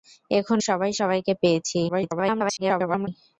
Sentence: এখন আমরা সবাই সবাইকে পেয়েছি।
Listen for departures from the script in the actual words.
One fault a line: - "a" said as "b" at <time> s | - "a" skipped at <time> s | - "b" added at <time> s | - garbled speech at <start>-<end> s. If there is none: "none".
- "আমরা" skipped at 0.6 s
- garbled speech at 1.9-3.1 s